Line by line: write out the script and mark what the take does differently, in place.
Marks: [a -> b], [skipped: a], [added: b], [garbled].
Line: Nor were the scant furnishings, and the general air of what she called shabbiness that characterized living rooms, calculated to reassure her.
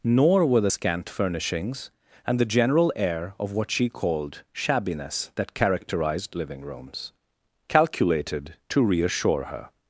Nor were the scant furnishings, and the general air of what she called shabbiness that characterized living rooms, calculated to reassure her.